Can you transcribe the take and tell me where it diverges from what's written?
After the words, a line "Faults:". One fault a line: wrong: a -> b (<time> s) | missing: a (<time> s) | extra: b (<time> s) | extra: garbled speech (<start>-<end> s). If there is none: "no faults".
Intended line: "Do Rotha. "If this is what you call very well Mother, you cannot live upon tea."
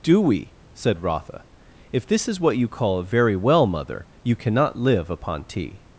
"Do we?" said Rotha. "If this is what you call very well Mother, you cannot live upon tea."
Faults:
extra: we said (0.2 s)